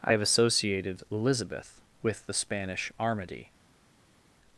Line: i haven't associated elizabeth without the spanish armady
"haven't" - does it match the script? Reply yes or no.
no